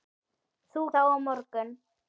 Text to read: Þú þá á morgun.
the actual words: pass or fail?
pass